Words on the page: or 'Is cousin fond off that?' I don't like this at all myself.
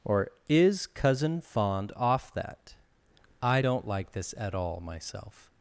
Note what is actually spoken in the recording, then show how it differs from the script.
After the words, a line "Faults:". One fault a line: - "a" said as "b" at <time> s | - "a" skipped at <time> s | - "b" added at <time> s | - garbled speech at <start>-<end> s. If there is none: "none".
or 'Is cousin fond off that?' I don't like this at all myself.
Faults:
none